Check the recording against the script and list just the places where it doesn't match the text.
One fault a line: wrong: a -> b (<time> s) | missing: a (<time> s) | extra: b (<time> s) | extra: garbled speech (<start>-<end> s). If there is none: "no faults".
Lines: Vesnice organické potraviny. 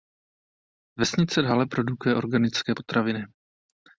extra: dále produkuje (1.4 s)